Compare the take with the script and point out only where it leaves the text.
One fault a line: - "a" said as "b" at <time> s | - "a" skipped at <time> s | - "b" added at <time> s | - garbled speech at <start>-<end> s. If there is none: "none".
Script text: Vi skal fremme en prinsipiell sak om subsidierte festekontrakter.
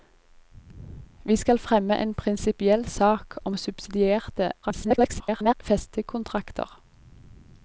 - garbled speech at 4.6-5.5 s